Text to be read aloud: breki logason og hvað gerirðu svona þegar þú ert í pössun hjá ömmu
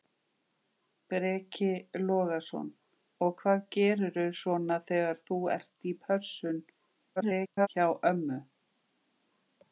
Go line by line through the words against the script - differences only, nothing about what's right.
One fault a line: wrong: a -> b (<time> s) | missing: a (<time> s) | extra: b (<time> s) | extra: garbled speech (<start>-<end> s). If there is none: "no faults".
extra: garbled speech (7.2-7.7 s)